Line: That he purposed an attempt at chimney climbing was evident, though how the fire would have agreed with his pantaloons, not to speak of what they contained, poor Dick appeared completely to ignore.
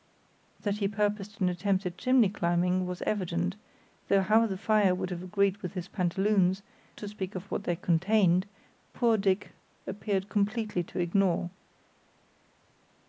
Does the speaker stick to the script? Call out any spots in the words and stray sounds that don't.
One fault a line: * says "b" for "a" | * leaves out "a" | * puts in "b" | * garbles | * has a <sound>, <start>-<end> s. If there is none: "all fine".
* leaves out "not"